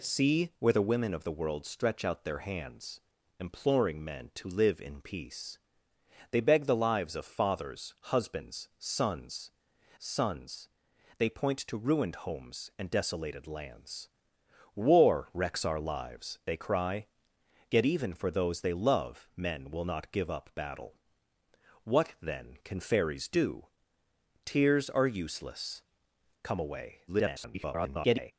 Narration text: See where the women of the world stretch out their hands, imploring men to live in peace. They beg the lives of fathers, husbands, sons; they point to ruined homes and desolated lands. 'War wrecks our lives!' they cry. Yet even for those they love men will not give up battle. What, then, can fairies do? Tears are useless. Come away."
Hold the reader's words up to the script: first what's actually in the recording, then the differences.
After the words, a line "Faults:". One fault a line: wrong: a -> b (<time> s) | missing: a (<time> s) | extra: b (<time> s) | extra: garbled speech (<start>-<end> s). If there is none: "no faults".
See where the women of the world stretch out their hands, imploring men to live in peace. They beg the lives of fathers, husbands, sons sons; they point to ruined homes and desolated lands. 'War wrecks our lives!' they cry. Yet even for those they love men will not give up battle. What, then, can fairies do? Tears are useless. Come away." [garbled]
Faults:
extra: sons (10.0 s)
extra: garbled speech (27.1-28.3 s)